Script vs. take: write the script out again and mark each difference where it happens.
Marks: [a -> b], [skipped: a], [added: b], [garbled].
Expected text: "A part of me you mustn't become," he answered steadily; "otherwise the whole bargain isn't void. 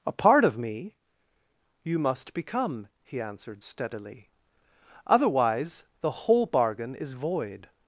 "A part of me you [mustn't -> must] become," he answered steadily; "otherwise the whole bargain [isn't -> is] void.